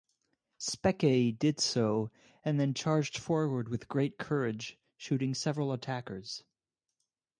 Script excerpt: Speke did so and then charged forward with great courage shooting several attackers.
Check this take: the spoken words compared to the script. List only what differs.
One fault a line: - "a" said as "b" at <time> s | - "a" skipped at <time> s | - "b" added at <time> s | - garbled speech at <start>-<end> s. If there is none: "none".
none